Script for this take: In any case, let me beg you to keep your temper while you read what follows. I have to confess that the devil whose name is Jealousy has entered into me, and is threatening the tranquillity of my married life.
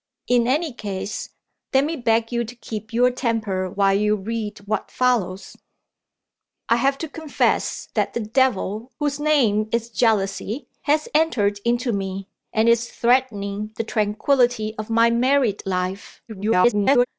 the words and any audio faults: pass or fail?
fail